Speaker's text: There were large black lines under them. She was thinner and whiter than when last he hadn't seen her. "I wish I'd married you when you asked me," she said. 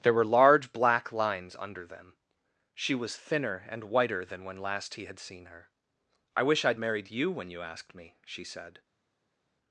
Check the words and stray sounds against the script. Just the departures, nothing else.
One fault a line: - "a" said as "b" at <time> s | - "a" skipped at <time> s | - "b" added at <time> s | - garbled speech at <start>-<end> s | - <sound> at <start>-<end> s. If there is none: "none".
- "hadn't" said as "had" at 5.0 s